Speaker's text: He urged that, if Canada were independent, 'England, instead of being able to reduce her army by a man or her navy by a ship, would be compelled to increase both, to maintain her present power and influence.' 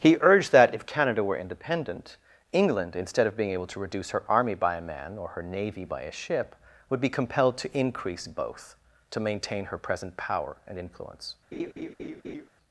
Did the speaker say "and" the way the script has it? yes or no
yes